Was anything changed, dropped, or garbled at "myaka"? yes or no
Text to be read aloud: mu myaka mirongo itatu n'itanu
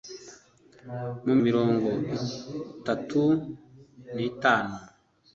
yes